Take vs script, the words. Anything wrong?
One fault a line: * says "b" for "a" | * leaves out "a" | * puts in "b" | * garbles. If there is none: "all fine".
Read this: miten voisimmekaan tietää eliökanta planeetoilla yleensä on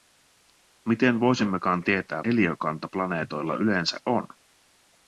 all fine